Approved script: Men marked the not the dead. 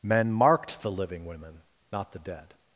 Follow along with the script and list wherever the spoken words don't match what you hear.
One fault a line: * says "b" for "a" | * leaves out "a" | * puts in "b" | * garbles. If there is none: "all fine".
* puts in "living women"